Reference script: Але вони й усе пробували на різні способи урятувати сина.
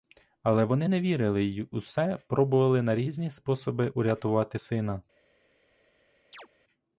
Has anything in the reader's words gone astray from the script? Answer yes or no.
yes